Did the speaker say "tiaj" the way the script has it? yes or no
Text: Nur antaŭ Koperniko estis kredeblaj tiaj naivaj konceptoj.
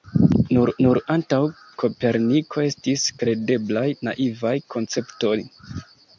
no